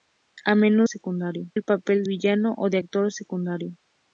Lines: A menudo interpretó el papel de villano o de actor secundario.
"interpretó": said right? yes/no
no